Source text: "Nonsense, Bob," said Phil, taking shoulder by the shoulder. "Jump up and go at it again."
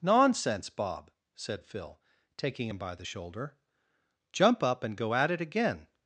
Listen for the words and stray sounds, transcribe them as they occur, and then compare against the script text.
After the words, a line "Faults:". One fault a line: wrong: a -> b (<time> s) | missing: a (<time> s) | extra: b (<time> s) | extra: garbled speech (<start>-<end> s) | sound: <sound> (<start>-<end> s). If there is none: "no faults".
"Nonsense, Bob," said Phil, taking him by the shoulder. "Jump up and go at it again."
Faults:
wrong: shoulder -> him (2.7 s)